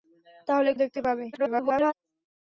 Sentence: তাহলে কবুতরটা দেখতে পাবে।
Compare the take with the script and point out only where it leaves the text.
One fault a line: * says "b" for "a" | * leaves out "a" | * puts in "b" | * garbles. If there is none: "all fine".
* leaves out "কবুতরটা"
* garbles